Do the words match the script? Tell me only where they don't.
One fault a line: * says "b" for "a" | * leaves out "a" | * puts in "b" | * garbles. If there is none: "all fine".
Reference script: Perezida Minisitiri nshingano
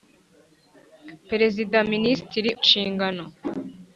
all fine